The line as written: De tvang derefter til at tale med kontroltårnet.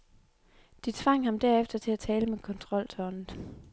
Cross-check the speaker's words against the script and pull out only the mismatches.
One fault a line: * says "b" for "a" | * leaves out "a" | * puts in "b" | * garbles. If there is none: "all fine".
* puts in "ham"